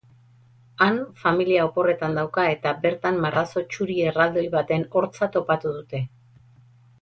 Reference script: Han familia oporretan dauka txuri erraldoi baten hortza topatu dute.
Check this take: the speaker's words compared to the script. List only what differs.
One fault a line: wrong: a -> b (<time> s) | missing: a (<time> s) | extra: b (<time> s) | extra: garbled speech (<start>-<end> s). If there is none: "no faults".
extra: eta bertan marrazo (2.5 s)